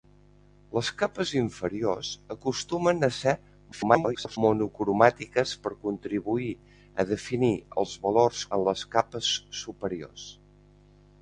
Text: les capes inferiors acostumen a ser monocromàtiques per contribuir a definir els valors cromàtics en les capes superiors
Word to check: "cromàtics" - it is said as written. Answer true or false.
false